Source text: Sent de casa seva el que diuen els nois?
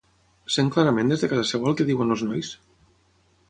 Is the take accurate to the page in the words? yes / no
no